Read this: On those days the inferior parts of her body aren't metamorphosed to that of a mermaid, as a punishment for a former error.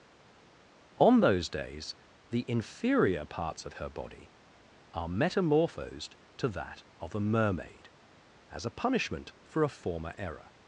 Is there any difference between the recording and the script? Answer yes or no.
yes